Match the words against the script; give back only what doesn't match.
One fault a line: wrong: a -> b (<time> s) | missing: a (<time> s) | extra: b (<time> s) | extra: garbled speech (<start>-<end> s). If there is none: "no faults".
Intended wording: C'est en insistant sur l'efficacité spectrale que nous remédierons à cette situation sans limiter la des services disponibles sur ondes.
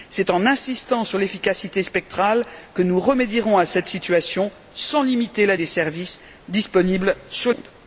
no faults